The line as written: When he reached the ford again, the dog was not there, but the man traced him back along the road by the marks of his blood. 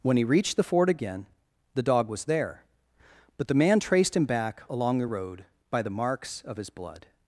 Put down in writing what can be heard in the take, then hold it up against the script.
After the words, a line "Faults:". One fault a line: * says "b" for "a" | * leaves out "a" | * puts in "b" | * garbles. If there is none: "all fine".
When he reached the ford again, the dog was there, but the man traced him back along the road by the marks of his blood.
Faults:
* leaves out "not"